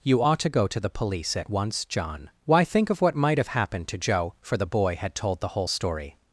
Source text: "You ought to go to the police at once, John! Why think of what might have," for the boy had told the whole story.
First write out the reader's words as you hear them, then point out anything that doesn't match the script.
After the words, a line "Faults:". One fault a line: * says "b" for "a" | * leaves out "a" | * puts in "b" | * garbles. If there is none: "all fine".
"You ought to go to the police at once, John! Why think of what might have happened to Joe," for the boy had told the whole story.
Faults:
* puts in "happened to Joe"